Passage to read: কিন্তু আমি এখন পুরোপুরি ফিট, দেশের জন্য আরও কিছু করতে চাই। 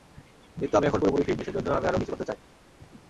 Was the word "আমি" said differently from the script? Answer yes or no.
no